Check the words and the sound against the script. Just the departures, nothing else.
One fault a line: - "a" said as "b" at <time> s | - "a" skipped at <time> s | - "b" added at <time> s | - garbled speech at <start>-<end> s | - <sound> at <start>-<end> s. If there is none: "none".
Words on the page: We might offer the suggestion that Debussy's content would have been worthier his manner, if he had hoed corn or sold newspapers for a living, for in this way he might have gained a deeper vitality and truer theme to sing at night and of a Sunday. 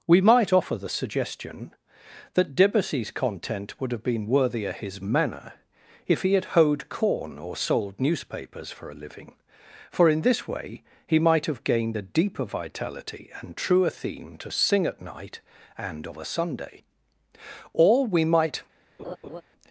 - "Or we might" added at 17.7 s
- laugh at 19.0-19.4 s